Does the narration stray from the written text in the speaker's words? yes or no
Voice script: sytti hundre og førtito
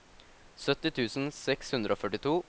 yes